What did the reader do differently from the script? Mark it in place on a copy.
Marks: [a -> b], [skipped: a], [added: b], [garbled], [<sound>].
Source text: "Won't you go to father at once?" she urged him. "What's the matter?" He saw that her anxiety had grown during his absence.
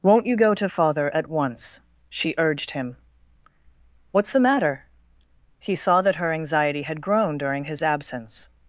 "Won't you go to father at once?" she urged him. "What's the matter?" He saw that her anxiety had grown during his absence.